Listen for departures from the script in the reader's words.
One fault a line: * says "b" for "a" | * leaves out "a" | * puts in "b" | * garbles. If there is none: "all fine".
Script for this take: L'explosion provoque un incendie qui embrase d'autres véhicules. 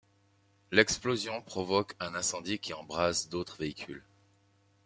all fine